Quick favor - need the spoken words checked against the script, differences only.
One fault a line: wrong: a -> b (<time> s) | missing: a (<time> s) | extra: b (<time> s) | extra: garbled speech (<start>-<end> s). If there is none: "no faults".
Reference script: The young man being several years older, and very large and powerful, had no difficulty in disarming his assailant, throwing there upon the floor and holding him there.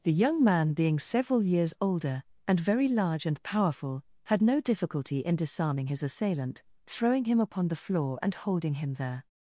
wrong: there -> him (7.2 s)